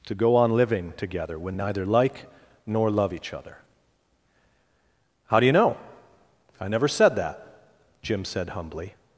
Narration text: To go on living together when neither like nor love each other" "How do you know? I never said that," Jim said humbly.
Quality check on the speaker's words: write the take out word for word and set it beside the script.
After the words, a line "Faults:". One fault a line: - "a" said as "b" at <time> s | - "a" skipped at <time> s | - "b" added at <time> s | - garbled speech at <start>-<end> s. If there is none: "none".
To go on living together when neither like nor love each other" "How do you know? I never said that," Jim said humbly.
Faults:
none